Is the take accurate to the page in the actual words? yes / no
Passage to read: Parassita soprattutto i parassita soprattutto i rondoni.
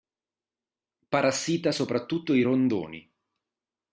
no